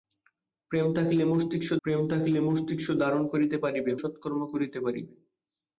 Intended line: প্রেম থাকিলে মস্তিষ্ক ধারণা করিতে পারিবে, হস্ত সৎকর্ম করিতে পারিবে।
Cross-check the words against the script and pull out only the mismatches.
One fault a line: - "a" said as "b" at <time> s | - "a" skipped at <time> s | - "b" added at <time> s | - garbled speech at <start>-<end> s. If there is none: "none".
- "প্রেম থাকিলে মস্তিষ্ক" added at 1.8 s
- "হস্ত" skipped at 3.9 s